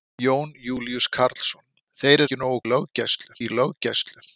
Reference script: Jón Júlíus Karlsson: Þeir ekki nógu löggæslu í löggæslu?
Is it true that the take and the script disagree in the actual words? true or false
false